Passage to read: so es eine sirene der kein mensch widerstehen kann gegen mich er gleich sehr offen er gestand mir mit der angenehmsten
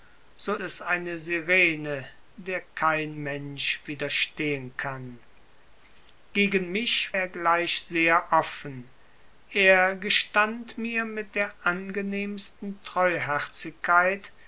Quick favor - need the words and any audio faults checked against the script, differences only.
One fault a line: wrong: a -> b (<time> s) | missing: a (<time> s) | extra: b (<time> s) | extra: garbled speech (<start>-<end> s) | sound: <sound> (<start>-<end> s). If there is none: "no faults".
no faults